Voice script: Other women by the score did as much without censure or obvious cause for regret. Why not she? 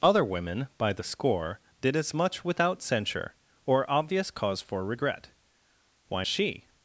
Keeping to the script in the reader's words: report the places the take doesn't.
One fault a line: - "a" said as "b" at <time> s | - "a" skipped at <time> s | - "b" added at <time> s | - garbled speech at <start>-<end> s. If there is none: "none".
- "not" skipped at 6.2 s